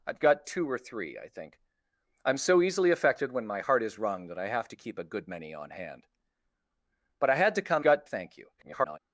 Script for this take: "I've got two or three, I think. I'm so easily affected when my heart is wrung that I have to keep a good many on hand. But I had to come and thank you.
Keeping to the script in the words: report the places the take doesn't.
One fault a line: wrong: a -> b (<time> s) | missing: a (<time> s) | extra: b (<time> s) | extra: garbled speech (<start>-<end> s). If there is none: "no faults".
wrong: and -> got (7.8 s)
extra: garbled speech (8.6-9.0 s)